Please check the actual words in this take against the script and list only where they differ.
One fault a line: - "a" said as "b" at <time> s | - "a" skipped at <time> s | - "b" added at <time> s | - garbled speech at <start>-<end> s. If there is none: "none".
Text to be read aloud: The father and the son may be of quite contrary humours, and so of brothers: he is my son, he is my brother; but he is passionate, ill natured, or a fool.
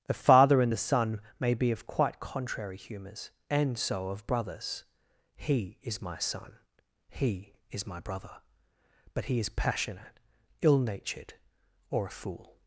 none